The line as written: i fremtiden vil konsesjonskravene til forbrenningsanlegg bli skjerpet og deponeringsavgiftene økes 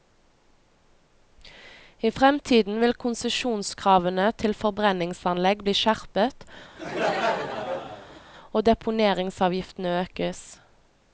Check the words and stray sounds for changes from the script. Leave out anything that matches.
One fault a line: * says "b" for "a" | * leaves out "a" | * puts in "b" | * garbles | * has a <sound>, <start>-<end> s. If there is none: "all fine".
* has a laugh, 6.8-8.2 s